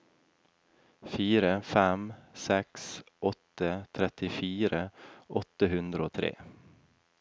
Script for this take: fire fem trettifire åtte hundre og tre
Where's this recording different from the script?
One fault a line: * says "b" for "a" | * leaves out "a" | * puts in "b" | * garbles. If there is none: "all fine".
* puts in "seks åtte"